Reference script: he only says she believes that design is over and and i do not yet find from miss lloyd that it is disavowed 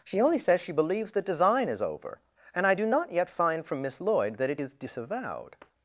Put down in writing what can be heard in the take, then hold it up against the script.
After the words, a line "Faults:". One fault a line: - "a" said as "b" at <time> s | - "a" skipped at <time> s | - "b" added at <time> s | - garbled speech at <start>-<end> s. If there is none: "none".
she only says she believes that design is over and i do not yet find from miss lloyd that it is disavowed
Faults:
- "he" said as "she" at 0.0 s
- "and" skipped at 2.7 s